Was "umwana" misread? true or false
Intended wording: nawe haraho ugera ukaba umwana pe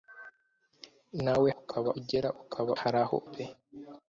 true